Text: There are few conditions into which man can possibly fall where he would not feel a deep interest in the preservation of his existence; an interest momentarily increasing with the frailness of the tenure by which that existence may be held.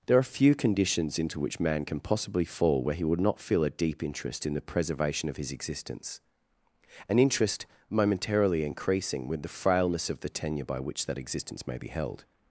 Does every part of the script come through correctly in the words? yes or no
yes